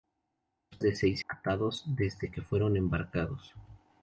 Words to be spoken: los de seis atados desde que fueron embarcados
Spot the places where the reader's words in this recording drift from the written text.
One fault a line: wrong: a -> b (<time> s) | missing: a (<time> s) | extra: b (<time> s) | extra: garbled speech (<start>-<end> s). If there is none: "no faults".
no faults